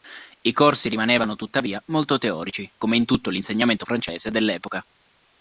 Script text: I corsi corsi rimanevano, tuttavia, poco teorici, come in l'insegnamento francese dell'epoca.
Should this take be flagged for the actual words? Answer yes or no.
yes